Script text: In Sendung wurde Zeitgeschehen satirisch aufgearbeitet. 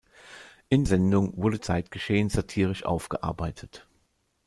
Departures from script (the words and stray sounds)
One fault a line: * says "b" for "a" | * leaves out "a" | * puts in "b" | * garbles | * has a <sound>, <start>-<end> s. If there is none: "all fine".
all fine